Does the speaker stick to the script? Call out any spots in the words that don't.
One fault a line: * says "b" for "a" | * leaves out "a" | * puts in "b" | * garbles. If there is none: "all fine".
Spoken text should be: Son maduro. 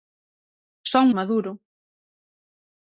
all fine